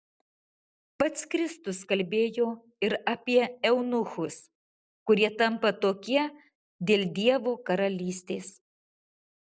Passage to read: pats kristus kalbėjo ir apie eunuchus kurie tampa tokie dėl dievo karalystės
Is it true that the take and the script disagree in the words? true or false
false